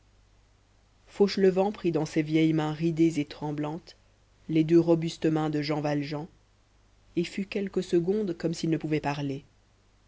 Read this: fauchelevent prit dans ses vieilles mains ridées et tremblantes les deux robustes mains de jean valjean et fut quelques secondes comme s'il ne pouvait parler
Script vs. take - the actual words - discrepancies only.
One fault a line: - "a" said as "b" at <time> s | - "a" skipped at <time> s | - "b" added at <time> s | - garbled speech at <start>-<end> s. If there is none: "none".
none